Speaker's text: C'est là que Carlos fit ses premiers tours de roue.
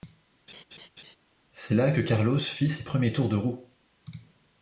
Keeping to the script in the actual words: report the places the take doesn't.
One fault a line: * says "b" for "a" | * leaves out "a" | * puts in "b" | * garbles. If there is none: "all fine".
all fine